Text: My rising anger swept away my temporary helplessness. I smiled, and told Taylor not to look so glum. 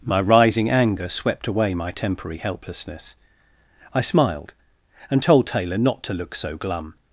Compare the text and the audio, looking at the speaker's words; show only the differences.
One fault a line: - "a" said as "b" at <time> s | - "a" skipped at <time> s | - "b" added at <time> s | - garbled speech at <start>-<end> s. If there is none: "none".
none